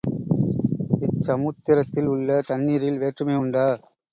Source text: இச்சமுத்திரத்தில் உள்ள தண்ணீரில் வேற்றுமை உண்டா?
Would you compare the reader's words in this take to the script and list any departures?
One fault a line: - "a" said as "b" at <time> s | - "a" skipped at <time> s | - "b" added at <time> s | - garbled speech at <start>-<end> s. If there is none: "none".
none